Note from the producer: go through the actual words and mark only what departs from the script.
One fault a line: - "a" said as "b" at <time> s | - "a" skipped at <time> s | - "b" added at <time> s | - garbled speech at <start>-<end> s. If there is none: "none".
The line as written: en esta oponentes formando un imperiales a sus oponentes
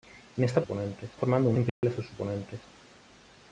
none